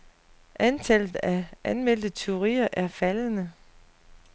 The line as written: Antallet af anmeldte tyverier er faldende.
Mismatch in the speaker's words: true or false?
false